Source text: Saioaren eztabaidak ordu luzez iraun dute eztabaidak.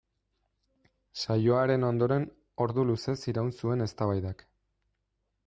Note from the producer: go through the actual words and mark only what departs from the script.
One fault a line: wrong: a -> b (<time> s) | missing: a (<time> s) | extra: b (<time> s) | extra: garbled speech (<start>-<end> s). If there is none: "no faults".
wrong: eztabaidak -> ondoren (1.9 s)
wrong: dute -> zuen (3.6 s)